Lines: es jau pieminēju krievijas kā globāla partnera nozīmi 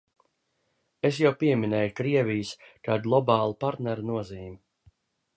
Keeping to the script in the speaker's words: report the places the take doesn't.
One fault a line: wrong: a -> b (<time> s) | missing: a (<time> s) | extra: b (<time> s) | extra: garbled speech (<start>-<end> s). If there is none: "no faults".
no faults